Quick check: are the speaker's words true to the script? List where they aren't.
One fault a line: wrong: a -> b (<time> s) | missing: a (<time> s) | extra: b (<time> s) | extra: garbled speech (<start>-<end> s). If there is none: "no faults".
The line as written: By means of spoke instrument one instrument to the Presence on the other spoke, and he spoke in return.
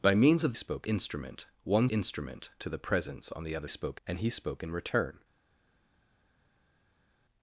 no faults